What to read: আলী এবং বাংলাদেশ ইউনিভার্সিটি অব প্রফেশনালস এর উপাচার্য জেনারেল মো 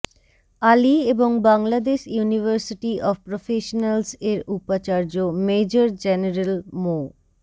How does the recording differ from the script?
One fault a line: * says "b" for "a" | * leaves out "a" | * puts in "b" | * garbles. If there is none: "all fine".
* puts in "মেজর"